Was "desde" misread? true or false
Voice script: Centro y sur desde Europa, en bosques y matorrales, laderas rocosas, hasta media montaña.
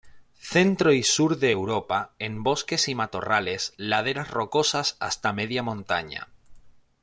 true